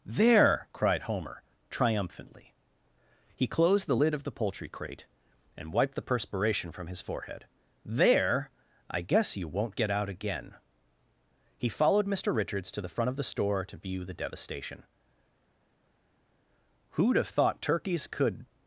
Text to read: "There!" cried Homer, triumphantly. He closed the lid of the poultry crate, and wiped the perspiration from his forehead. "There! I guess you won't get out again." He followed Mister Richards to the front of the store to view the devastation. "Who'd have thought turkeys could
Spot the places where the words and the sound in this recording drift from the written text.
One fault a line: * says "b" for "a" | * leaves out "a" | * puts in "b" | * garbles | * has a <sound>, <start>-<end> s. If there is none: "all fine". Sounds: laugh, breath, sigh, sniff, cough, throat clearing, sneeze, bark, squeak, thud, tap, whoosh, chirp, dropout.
all fine